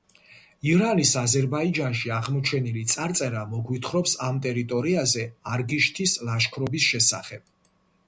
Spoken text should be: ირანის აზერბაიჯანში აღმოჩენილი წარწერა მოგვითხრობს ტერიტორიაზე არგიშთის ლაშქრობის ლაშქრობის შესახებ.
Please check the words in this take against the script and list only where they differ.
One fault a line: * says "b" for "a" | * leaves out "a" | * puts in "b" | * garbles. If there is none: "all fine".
* puts in "ამ"
* leaves out "ლაშქრობის"